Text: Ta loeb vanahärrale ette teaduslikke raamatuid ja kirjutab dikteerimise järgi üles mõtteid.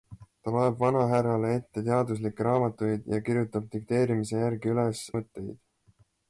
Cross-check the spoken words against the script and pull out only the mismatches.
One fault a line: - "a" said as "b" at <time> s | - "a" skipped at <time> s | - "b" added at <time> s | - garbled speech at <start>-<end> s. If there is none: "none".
none